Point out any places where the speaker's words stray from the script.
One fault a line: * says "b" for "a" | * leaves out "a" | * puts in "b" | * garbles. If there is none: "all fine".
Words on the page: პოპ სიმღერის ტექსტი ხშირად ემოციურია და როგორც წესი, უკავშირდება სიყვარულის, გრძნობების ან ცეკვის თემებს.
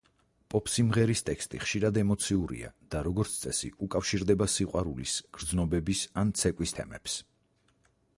all fine